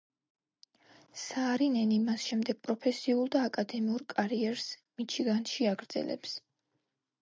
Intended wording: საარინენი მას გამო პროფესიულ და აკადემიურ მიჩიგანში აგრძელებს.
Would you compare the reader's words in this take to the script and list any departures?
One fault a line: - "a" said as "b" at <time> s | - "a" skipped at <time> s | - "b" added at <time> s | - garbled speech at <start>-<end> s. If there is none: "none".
- "გამო" said as "შემდეგ" at 2.3 s
- "კარიერს" added at 4.2 s